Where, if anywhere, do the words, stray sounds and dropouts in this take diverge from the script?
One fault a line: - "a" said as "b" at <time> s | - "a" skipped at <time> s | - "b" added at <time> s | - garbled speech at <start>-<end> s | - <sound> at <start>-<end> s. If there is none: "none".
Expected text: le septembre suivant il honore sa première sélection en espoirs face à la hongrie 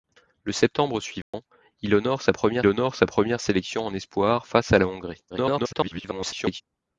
- dropout at 1.2-1.3 s
- "honore sa première" added at 2.7 s
- garbled speech at 5.3-6.6 s